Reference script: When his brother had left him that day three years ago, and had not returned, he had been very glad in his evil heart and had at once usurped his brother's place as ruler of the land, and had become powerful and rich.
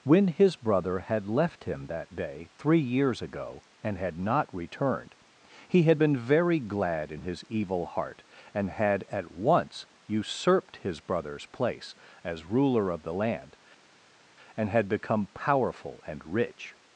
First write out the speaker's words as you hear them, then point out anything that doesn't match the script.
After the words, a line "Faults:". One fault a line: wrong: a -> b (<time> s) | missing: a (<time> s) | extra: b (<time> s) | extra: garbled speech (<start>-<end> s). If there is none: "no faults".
When his brother had left him that day three years ago, and had not returned, he had been very glad in his evil heart and had at once usurped his brother's place as ruler of the land, and had become powerful and rich.
Faults:
no faults